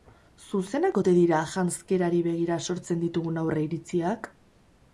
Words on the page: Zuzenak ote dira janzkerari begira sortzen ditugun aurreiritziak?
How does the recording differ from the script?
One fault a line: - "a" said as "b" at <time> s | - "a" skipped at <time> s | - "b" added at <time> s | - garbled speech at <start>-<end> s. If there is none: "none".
none